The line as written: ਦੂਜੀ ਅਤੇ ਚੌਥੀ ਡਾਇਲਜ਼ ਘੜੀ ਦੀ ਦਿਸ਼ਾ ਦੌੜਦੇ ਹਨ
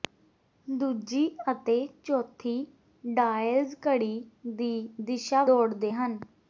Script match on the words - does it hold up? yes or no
yes